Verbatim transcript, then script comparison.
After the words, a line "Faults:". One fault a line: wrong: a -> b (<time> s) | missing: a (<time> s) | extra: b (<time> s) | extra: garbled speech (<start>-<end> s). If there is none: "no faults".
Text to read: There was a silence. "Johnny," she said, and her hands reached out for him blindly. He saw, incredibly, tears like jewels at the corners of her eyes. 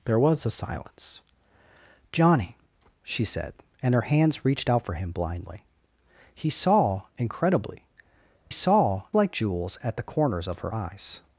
There was a silence. "Johnny," she said, and her hands reached out for him blindly. He saw, incredibly, saw like jewels at the corners of her eyes.
Faults:
wrong: tears -> saw (8.5 s)